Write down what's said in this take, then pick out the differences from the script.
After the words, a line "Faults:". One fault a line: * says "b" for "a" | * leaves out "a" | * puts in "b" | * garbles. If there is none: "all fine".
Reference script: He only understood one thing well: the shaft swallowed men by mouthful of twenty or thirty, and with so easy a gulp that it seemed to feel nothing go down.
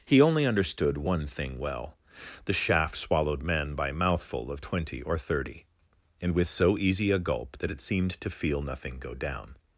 He only understood one thing well: the shaft swallowed men by mouthful of twenty or thirty, and with so easy a gulp that it seemed to feel nothing go down.
Faults:
all fine